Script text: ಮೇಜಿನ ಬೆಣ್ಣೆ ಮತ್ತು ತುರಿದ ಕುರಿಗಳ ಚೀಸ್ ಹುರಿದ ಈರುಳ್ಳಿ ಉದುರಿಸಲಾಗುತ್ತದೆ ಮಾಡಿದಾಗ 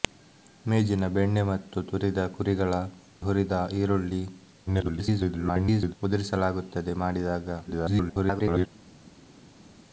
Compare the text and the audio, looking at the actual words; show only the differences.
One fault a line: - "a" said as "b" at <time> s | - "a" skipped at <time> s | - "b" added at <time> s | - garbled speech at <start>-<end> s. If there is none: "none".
- "ಚೀಸ್" skipped at 2.7 s
- garbled speech at 4.7-5.9 s
- garbled speech at 7.7-8.7 s